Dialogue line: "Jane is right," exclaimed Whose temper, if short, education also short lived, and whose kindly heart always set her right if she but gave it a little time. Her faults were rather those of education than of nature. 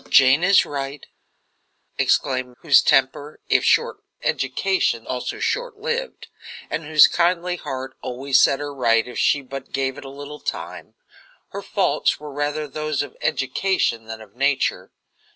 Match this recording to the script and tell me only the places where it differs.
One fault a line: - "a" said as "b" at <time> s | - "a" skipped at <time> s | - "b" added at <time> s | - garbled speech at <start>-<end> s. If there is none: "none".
none